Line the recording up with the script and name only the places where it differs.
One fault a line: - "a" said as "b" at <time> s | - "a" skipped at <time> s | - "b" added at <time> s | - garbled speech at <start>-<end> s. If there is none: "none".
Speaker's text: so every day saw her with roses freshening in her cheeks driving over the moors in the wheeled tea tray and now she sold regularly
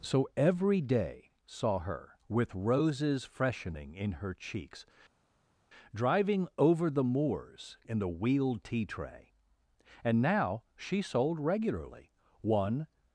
- "one" added at 12.4 s